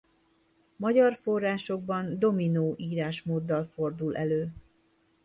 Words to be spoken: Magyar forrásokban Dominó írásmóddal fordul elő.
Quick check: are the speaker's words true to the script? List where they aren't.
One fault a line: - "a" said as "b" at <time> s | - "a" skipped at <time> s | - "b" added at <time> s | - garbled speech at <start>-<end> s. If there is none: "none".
none